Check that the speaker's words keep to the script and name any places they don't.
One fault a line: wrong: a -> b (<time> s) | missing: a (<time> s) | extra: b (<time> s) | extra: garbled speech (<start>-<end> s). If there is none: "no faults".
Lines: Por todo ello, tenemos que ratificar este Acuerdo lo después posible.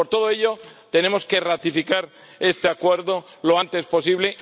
wrong: después -> antes (3.6 s)